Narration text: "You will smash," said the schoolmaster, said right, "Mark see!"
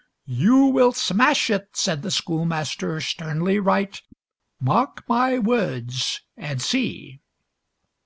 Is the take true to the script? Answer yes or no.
no